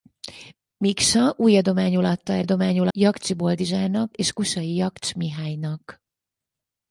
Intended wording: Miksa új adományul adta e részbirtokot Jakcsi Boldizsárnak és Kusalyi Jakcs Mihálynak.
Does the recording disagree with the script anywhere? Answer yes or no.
yes